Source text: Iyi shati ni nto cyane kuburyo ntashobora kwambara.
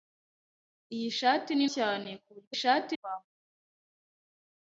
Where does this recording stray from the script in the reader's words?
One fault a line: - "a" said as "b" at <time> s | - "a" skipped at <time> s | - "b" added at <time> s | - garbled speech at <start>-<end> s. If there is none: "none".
- "nto" skipped at 1.6 s
- "ntashobora" said as "shati" at 2.6 s